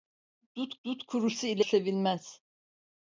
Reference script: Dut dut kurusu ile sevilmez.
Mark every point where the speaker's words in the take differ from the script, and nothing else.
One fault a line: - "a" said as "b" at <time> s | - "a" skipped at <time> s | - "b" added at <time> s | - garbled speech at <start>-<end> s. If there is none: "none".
none